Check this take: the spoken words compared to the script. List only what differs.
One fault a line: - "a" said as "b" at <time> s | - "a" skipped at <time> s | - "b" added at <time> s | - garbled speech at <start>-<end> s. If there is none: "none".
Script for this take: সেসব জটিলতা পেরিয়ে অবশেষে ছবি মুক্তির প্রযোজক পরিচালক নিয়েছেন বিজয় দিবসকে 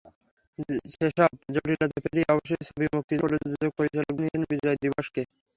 none